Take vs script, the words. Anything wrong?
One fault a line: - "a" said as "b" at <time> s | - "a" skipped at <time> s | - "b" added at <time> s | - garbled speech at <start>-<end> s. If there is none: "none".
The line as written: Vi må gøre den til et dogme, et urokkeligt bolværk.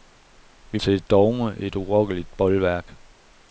- "må gøre den" skipped at 0.8 s